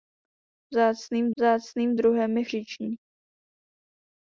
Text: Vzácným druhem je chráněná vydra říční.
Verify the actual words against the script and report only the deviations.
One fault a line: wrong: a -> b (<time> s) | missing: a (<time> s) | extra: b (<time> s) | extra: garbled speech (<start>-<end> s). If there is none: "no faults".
extra: vzácným (1.4 s)
missing: chráněná vydra (2.4 s)